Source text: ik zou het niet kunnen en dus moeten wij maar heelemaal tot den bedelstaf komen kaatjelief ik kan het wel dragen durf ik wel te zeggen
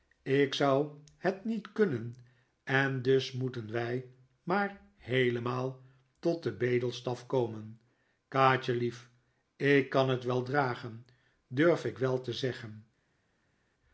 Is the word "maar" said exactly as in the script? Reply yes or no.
yes